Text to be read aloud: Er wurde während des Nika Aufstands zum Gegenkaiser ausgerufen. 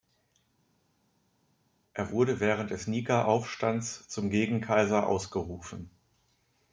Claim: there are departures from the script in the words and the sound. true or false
false